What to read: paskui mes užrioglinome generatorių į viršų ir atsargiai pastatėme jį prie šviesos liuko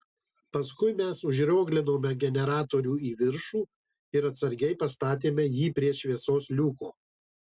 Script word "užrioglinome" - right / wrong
right